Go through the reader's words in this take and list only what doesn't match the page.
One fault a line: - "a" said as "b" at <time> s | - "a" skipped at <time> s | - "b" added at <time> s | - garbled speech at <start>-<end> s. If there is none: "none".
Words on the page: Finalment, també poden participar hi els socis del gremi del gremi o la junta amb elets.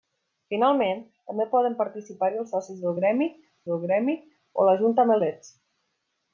none